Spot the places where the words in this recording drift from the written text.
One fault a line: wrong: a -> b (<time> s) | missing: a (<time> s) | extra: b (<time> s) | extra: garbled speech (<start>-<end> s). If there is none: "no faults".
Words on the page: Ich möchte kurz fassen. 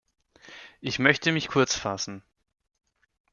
extra: mich (1.3 s)